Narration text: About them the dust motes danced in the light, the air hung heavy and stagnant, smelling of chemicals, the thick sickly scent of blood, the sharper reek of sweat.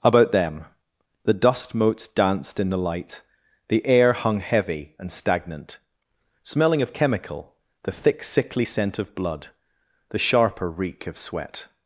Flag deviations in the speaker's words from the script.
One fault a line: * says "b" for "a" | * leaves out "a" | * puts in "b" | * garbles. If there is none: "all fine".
* says "chemical" for "chemicals"